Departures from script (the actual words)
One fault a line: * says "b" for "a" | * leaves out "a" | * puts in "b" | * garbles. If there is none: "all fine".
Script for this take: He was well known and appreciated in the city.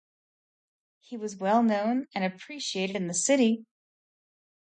all fine